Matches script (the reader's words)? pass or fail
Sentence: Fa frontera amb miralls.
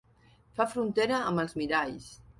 fail